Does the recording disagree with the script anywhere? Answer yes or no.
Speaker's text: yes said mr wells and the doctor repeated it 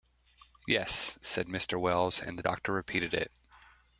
no